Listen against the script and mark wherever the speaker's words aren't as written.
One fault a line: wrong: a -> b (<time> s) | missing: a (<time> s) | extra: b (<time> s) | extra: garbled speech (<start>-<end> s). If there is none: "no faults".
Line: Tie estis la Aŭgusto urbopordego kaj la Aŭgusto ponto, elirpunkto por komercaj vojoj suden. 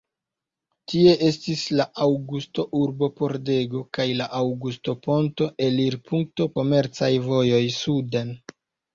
missing: por (6.5 s)